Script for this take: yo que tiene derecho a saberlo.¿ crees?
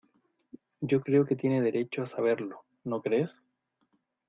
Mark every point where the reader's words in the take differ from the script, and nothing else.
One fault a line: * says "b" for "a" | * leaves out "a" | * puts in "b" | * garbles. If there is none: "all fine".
* puts in "creo"
* puts in "no"